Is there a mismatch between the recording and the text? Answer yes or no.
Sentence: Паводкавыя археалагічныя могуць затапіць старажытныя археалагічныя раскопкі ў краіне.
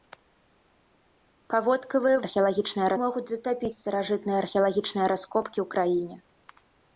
no